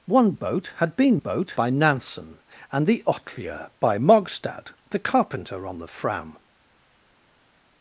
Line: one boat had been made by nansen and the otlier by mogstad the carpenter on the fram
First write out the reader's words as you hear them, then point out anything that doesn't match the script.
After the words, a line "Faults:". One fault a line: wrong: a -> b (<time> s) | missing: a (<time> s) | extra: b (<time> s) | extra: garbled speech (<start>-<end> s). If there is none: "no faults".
one boat had been boat by nansen and the otlier by mogstad the carpenter on the fram
Faults:
wrong: made -> boat (1.1 s)